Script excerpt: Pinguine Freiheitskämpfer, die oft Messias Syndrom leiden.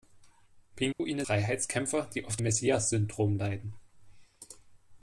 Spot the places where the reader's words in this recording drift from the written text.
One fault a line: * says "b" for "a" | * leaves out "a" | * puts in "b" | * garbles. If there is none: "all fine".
all fine